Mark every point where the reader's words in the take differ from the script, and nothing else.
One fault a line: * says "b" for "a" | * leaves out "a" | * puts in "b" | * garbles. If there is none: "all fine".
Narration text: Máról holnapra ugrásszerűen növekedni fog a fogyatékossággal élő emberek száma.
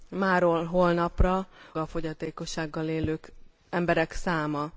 * leaves out "ugrásszerűen növekedni fog"